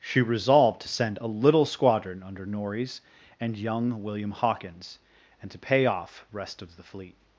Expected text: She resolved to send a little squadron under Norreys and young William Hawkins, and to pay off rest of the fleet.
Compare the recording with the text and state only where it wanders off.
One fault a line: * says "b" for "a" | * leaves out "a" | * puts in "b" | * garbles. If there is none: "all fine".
all fine